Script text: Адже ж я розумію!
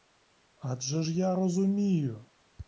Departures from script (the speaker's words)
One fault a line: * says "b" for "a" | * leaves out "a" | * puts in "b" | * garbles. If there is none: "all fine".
all fine